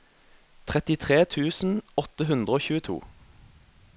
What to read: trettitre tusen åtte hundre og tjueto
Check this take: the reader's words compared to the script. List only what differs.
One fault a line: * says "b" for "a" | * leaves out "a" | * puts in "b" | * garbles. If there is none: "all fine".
all fine